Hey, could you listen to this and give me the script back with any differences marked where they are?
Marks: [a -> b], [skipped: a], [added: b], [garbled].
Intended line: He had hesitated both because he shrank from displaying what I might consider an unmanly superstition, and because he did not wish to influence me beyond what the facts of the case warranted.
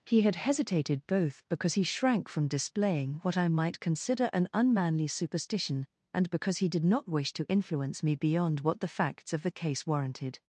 He had hesitated both because he shrank from displaying what I might consider an unmanly superstition, and because he did not wish to influence me beyond what the facts of the case warranted.